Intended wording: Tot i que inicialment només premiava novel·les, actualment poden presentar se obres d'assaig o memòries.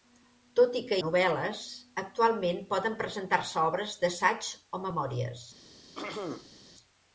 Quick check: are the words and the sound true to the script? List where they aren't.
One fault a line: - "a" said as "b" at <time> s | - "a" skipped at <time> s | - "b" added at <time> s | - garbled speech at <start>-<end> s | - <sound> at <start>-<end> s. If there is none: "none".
- "inicialment només premiava" skipped at 1.0 s
- throat clearing at 5.9-6.6 s